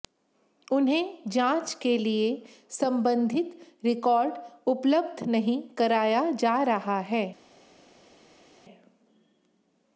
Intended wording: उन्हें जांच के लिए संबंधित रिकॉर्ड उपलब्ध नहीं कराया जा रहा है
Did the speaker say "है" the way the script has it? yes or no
yes